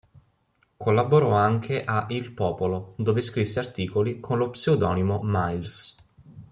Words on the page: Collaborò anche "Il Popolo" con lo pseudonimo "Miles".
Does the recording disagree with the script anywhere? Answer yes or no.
yes